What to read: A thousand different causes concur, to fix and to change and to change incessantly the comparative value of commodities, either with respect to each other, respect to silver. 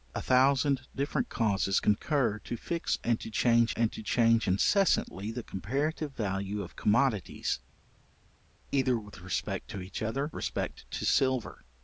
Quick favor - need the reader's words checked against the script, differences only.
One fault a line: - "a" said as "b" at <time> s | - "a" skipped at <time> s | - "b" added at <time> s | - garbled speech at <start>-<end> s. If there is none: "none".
none